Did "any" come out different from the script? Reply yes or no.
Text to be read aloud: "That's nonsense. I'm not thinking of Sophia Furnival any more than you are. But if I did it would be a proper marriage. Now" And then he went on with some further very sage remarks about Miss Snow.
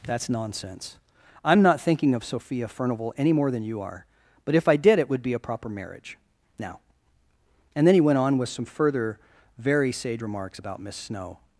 no